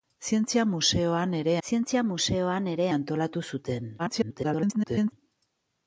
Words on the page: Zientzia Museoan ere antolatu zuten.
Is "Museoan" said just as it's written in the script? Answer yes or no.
yes